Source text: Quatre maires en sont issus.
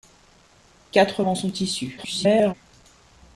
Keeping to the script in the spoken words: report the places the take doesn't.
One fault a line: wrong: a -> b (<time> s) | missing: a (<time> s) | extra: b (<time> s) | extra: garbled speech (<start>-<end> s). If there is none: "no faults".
missing: maires (1.2 s)
extra: garbled speech (2.0-2.5 s)